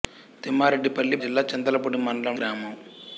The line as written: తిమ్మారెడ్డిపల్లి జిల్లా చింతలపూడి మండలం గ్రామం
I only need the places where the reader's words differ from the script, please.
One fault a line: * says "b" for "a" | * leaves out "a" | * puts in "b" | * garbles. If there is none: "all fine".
all fine